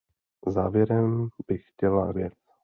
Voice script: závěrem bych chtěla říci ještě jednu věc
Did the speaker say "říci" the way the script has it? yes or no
no